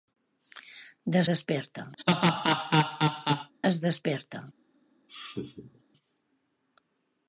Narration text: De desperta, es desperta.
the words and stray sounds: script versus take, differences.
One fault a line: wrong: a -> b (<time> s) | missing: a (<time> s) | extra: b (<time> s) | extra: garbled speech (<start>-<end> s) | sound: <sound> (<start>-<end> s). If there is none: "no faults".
sound: laugh (2.0-3.5 s)
sound: laugh (5.1-5.8 s)